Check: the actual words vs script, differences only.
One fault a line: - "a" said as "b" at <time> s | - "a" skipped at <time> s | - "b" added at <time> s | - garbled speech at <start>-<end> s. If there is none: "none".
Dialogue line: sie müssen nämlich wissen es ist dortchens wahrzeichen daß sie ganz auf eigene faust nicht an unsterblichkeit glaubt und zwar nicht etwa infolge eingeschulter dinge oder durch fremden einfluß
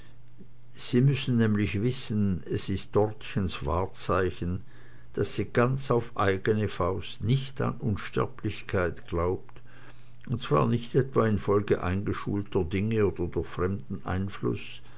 none